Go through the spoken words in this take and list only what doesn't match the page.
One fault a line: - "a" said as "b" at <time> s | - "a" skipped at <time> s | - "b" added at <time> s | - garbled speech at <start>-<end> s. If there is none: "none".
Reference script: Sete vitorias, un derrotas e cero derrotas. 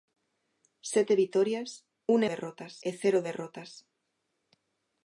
none